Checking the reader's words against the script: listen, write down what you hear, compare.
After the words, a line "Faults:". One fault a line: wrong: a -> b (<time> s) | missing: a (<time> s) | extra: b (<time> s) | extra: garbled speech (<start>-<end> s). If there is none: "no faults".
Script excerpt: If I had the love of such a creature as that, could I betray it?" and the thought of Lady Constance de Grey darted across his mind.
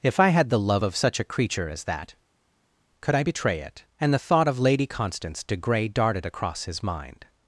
If I had the love of such a creature as that, could I betray it?" and the thought of Lady Constance de Grey darted across his mind.
Faults:
no faults